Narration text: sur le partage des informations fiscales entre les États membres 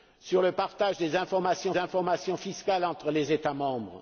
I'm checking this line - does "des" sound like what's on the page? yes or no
yes